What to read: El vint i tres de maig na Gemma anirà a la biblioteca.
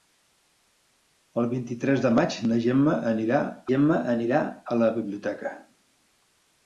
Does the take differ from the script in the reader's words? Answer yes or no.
yes